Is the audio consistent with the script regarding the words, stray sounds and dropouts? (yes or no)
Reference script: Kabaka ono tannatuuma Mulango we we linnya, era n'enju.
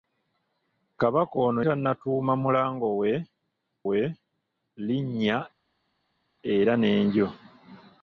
yes